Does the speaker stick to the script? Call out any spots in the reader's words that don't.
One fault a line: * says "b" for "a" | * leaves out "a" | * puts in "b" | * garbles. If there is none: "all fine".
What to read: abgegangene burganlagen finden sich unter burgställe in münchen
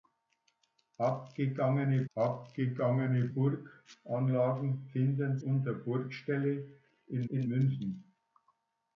* puts in "abgegangene"
* leaves out "sich"
* puts in "in"